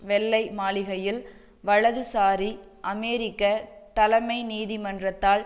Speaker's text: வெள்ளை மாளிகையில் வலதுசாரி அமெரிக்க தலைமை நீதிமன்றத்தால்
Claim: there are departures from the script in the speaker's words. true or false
false